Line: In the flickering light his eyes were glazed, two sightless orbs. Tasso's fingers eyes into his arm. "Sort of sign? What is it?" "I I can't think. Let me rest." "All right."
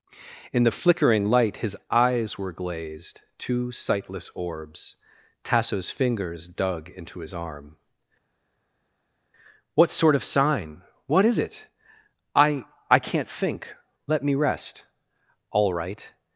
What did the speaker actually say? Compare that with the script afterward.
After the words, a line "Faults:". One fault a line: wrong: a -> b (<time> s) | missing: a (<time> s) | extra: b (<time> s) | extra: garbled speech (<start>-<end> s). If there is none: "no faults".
In the flickering light his eyes were glazed, two sightless orbs. Tasso's fingers dug into his arm. "What sort of sign? What is it?" "I I can't think. Let me rest." "All right."
Faults:
wrong: eyes -> dug (6.5 s)
extra: What (9.7 s)